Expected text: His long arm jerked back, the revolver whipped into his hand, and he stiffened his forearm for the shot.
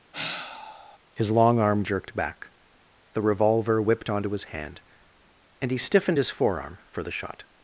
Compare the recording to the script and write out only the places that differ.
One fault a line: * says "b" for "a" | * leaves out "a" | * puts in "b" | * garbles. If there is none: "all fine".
* says "onto" for "into"